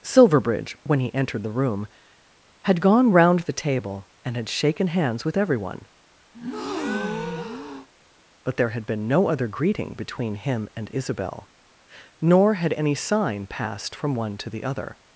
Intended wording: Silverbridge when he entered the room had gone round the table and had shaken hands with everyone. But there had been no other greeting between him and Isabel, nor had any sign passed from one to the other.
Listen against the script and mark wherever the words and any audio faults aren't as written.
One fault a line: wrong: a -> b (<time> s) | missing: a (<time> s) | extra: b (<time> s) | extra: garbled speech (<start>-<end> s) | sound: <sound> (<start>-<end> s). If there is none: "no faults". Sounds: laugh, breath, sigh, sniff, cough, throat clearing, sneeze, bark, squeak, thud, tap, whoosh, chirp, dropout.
sound: breath (6.3-7.9 s)